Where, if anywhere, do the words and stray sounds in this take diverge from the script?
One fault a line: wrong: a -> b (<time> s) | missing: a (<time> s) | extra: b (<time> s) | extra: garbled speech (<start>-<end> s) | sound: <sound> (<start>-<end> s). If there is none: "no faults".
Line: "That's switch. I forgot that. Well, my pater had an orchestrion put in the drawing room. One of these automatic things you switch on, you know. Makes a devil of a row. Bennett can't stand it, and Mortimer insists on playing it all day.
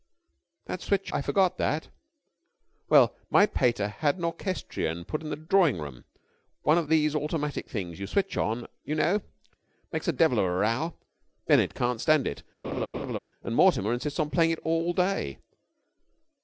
sound: laugh (12.6-13.2 s)